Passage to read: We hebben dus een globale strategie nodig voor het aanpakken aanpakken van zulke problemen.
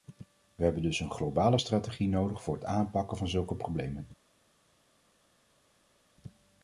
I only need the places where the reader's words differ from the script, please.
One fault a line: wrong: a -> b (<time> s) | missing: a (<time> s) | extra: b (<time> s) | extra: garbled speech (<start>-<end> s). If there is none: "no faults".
missing: aanpakken (3.2 s)